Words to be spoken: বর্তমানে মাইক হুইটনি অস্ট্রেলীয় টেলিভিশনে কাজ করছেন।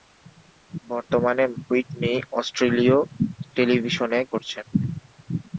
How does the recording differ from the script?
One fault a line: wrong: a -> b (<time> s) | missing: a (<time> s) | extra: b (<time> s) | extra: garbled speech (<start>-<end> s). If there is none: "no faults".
missing: মাইক (1.4 s)
missing: কাজ (4.2 s)